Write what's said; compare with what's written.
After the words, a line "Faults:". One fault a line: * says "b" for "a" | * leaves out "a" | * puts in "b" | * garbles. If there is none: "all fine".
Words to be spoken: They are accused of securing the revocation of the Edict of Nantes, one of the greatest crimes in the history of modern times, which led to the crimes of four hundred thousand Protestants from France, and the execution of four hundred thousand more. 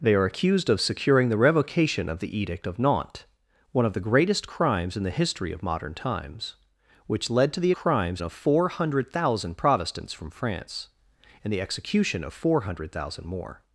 They are accused of securing the revocation of the Edict of Nantes, one of the greatest crimes in the history of modern times, which led to the crimes of four hundred thousand Protestants from France, and the execution of four hundred thousand more.
Faults:
all fine